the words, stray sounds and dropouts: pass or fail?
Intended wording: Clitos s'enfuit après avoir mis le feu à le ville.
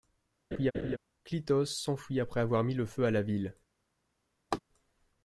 fail